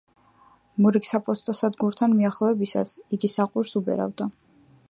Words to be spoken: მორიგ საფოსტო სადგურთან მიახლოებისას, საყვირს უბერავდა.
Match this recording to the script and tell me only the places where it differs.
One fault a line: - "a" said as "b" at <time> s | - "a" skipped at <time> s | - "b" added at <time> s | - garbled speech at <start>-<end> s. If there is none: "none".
- "იგი" added at 3.2 s